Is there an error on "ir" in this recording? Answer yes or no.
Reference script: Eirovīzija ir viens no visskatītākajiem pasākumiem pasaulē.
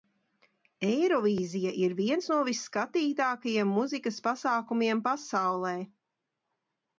no